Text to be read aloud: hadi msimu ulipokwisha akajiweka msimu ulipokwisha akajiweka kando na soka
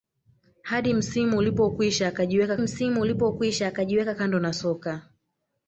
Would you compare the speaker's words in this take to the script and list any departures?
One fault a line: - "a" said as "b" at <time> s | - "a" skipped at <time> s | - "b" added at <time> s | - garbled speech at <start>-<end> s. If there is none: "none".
none